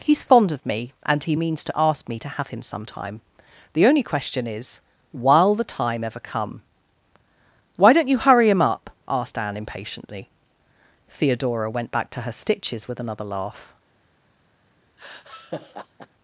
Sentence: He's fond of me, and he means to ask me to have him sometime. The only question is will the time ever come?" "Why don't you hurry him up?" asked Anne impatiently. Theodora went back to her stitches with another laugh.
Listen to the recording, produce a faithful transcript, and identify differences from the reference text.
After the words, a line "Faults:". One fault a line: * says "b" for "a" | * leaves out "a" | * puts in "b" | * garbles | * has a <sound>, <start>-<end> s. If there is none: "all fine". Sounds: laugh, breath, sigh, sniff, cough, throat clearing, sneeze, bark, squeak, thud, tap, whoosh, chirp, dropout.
He's fond of me, and he means to ask me to have him sometime. The only question is while the time ever come?" "Why don't you hurry him up?" asked Anne impatiently. Theodora went back to her stitches with another laugh.
Faults:
* says "while" for "will"
* has a laugh, 15.0-16.1 s